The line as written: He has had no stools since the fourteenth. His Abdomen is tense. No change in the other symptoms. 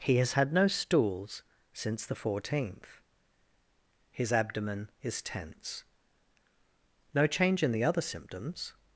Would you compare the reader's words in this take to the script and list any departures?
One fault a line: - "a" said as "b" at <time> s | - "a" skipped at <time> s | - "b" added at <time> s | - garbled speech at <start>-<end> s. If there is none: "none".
none